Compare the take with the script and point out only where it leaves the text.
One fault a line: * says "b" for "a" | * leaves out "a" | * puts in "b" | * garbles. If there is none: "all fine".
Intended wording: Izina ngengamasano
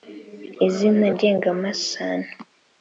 all fine